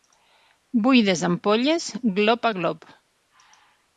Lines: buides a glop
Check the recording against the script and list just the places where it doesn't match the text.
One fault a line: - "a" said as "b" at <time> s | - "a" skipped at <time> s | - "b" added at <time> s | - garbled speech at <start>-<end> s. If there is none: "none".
- "ampolles glop" added at 1.3 s